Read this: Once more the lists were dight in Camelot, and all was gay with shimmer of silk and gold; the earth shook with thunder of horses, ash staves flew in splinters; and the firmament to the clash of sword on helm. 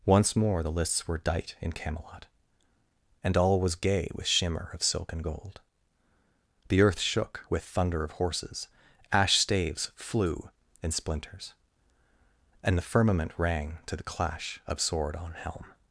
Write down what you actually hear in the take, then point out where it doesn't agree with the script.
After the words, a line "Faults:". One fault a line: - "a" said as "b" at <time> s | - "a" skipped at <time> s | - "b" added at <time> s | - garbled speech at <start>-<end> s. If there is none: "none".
Once more the lists were dight in Camelot, and all was gay with shimmer of silk and gold; the earth shook with thunder of horses, ash staves flew in splinters; and the firmament rang to the clash of sword on helm.
Faults:
- "rang" added at 13.4 s